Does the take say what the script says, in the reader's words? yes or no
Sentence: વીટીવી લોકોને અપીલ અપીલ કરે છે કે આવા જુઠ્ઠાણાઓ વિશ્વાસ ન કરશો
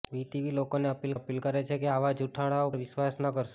yes